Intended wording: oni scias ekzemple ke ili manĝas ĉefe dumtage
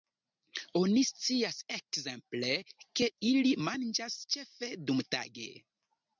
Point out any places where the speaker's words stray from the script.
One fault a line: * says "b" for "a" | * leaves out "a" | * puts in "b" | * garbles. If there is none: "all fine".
all fine